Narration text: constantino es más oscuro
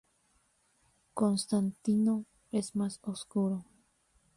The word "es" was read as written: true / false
true